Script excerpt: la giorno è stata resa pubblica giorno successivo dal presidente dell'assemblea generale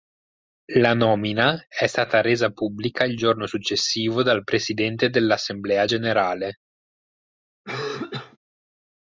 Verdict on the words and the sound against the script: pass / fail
fail